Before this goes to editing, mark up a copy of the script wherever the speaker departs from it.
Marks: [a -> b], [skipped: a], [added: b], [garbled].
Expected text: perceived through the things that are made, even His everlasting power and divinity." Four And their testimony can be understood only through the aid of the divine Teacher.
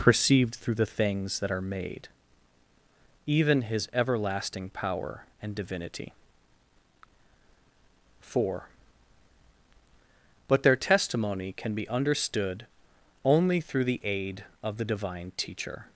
perceived through the things that are made, even His everlasting power and divinity." Four [And -> But] their testimony can be understood only through the aid of the divine Teacher.